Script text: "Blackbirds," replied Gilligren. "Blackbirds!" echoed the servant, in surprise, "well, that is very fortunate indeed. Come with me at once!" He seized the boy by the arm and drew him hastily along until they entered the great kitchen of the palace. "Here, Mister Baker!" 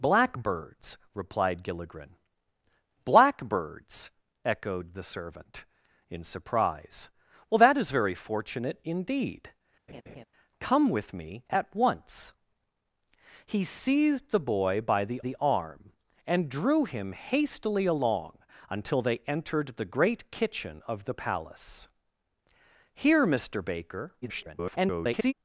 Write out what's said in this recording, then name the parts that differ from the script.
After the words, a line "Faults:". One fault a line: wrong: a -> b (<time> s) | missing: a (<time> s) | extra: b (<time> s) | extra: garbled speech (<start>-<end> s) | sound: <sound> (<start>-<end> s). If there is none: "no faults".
"Blackbirds," replied Gilligren. "Blackbirds!" echoed the servant, in surprise, "well, that is very fortunate indeed. Come with me at once!" He seized the boy by the the arm and drew him hastily along until they entered the great kitchen of the palace. "Here, Mister Baker!" [garbled]
Faults:
sound: laugh (9.9-10.2 s)
extra: the (15.2 s)
extra: garbled speech (24.2-25.3 s)